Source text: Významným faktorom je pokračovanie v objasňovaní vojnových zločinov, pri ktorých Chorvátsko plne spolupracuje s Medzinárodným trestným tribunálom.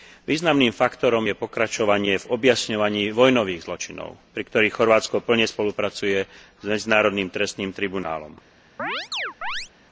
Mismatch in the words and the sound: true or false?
true